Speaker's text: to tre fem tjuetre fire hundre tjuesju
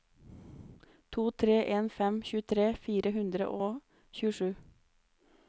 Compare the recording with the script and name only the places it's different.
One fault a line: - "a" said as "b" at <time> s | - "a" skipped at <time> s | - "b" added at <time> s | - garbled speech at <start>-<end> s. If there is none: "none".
- "en" added at 1.8 s
- "og" added at 3.7 s